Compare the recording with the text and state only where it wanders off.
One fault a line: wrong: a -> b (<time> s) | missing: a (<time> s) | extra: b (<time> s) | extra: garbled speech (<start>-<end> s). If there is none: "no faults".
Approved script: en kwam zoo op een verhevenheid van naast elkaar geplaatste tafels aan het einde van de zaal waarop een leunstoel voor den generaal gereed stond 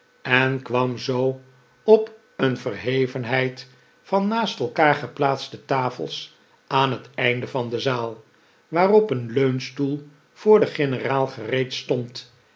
no faults